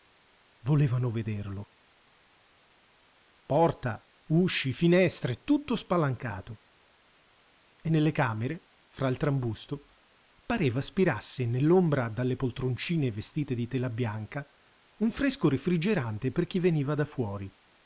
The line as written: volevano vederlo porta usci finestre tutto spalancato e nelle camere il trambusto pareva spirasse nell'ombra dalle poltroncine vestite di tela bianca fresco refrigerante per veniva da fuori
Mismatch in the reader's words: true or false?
true